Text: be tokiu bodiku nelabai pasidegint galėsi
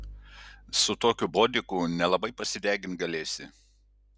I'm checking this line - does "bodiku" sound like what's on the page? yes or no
yes